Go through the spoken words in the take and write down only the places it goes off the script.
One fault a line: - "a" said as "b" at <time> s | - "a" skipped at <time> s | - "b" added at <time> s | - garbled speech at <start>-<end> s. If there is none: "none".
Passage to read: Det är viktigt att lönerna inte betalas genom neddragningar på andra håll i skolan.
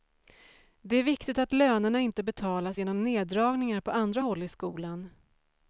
none